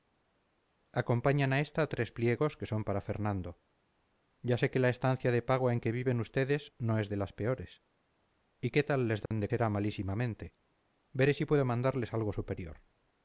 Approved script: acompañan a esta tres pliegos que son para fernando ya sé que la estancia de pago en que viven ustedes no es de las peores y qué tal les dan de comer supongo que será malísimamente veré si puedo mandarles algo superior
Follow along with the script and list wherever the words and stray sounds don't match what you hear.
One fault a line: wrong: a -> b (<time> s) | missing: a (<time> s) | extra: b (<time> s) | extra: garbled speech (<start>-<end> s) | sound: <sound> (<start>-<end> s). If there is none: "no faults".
sound: dropout (9.3-9.3 s)
missing: comer supongo que (9.5 s)